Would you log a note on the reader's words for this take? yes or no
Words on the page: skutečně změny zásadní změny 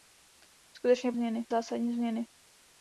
no